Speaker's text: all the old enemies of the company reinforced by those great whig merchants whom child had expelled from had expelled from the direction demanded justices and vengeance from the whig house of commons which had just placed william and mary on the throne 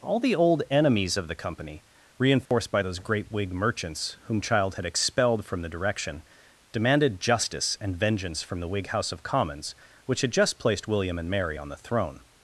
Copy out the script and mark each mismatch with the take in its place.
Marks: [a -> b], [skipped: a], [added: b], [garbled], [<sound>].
all the old enemies of the company reinforced [dropout] by those great whig merchants whom child had expelled from [skipped: had expelled from] the direction demanded [justices -> justice] and vengeance from the whig house of commons which had just placed william and mary on the throne